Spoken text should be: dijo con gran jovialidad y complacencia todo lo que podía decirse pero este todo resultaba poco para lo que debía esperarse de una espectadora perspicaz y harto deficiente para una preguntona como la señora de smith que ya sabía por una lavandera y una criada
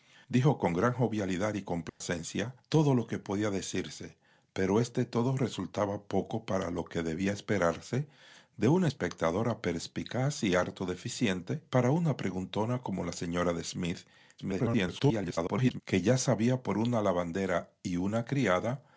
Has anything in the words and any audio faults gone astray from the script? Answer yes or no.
yes